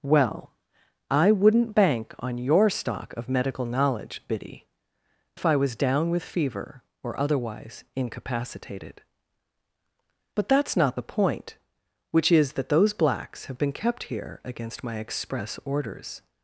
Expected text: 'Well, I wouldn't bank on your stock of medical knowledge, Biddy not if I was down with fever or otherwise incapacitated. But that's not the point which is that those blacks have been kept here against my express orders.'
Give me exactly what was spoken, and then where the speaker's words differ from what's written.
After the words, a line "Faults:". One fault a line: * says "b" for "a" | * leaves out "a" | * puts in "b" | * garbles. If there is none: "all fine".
'Well, I wouldn't bank on your stock of medical knowledge, Biddy if I was down with fever or otherwise incapacitated. But that's not the point which is that those blacks have been kept here against my express orders.'
Faults:
* leaves out "not"